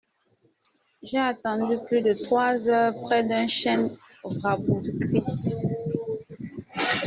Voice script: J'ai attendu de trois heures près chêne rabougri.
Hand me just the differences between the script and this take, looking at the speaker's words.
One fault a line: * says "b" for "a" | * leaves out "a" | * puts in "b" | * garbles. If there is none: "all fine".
* puts in "plus"
* puts in "d'un"